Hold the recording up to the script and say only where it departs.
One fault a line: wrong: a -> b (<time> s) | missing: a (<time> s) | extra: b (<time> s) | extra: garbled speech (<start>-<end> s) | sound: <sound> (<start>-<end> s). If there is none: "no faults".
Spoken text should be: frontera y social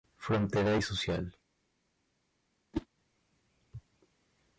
sound: whoosh (2.7-2.9 s)